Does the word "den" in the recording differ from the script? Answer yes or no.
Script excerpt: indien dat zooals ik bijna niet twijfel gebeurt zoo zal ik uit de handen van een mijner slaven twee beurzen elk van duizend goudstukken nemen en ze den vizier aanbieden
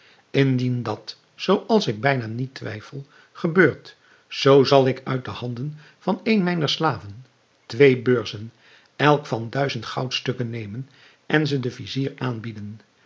no